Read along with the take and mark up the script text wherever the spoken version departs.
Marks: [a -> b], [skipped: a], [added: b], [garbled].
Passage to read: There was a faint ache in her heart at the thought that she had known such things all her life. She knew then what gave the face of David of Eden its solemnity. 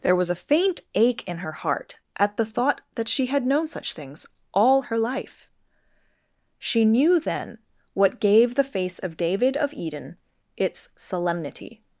There was a faint ache in her heart at the thought that she had known such things all her life. She knew then what gave the face of David of Eden its solemnity.